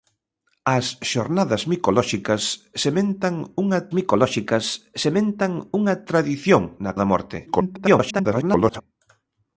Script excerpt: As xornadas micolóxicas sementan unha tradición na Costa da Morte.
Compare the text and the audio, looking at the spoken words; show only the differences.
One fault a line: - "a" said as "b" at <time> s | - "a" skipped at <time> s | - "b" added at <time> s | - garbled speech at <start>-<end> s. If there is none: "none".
- "micolóxicas sementan unha" added at 4.0 s
- "Costa" skipped at 6.9 s
- garbled speech at 7.5-8.8 s